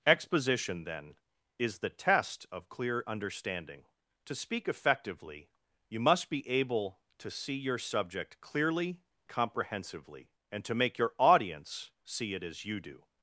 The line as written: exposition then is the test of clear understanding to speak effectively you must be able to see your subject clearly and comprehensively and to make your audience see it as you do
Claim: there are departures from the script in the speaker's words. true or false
true